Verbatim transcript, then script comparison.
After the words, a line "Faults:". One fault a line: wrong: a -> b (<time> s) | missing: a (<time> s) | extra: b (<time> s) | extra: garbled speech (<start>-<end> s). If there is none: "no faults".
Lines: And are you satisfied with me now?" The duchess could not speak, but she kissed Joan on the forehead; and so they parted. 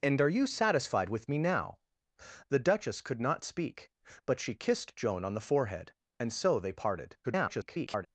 And are you satisfied with me now?" The duchess could not speak, but she kissed Joan on the forehead; and so they parted. [garbled]
Faults:
extra: garbled speech (7.2-8.1 s)